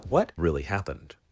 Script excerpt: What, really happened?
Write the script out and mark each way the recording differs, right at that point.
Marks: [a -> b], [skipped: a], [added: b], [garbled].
What, really happened?